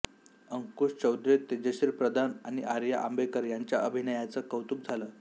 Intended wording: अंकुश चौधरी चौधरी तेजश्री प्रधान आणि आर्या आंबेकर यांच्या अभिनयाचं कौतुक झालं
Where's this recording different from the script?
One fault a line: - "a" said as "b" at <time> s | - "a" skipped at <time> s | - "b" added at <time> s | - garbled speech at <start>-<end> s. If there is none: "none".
- "चौधरी" skipped at 1.4 s